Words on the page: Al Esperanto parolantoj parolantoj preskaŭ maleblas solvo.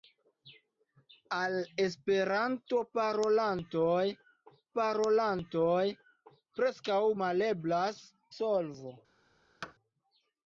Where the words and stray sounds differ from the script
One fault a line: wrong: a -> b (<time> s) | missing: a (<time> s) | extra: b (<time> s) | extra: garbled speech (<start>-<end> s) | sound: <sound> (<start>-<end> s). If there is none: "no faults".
sound: thud (9.6-9.7 s)